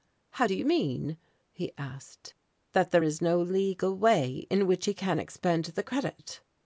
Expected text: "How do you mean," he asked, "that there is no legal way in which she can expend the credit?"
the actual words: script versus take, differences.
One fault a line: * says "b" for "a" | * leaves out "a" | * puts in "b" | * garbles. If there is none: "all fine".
* says "he" for "she"